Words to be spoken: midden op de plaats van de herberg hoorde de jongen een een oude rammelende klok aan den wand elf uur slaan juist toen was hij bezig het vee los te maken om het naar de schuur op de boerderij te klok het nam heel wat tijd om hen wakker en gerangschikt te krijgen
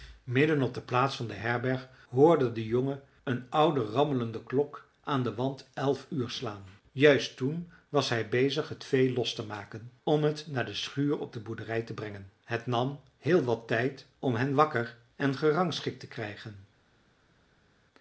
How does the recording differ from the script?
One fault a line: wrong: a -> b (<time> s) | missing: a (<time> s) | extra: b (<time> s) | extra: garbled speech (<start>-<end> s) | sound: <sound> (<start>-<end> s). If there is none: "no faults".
missing: een (3.5 s)
wrong: klok -> brengen (11.9 s)